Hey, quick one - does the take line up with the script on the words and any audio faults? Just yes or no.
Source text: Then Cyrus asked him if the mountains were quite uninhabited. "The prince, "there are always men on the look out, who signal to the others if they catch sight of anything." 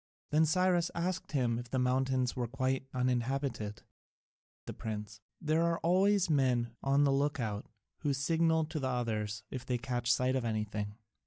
yes